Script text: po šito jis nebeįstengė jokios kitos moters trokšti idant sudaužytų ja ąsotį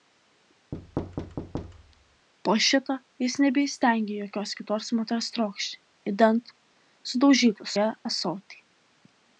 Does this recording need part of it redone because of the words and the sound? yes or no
yes